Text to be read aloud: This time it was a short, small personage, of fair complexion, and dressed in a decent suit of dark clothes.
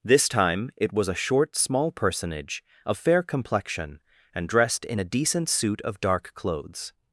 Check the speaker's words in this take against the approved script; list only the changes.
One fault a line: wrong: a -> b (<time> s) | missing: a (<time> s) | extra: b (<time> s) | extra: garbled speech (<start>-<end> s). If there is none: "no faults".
no faults